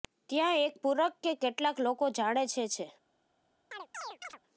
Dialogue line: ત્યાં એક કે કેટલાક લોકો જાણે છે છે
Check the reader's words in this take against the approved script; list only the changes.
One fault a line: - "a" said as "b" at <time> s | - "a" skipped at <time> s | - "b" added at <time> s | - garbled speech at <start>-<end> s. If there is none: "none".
- "પૂરક" added at 0.8 s